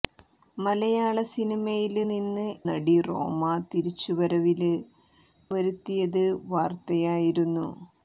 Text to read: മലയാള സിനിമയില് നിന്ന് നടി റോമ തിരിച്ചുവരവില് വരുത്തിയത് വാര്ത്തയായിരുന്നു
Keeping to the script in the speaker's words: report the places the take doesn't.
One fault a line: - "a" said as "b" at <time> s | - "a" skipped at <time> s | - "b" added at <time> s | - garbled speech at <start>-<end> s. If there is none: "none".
none